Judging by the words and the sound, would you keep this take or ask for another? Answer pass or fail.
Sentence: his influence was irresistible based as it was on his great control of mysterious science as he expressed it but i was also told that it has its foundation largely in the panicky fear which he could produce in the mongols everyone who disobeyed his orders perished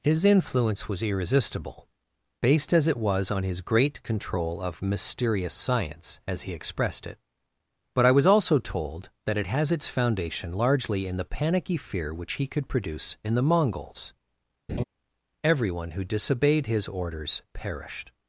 fail